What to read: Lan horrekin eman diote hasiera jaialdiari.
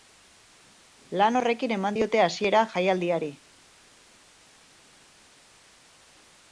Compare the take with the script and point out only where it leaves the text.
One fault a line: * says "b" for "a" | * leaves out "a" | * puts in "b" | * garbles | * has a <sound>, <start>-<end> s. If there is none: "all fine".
all fine